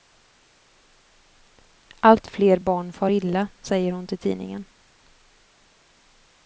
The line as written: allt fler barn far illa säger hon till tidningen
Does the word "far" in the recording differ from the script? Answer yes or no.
no